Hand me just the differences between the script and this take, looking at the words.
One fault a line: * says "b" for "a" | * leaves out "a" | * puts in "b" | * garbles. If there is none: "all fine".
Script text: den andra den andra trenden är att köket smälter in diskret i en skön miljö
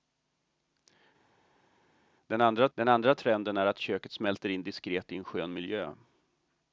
all fine